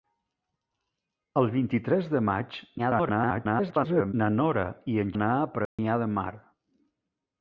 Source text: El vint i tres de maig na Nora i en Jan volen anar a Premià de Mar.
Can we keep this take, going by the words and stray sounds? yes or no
no